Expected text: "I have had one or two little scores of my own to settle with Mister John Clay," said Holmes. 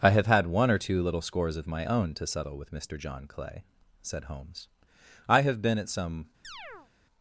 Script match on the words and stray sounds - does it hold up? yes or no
no